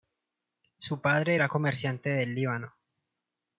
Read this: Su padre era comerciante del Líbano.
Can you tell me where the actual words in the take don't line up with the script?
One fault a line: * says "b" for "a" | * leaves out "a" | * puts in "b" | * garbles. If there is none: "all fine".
all fine